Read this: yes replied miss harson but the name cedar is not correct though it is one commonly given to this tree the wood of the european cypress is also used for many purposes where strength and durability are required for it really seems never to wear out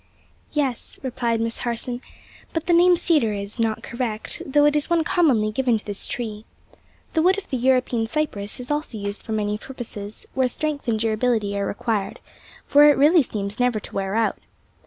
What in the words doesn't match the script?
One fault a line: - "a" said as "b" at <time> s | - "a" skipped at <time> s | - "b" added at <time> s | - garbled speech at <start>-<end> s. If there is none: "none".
none